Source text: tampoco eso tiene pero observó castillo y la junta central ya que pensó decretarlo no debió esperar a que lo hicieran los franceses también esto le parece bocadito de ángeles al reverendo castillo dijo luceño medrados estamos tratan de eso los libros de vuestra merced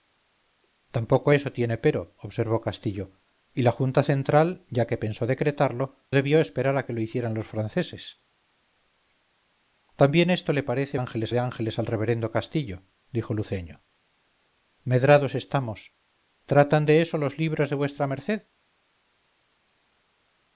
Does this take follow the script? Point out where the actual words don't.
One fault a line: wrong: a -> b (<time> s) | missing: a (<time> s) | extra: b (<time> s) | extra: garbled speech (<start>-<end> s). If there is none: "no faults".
missing: no (6.0 s)
wrong: bocadito -> ángeles (10.9 s)